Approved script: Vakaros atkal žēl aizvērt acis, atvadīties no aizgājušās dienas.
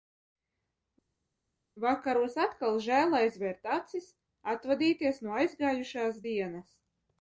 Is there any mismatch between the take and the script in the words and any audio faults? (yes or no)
no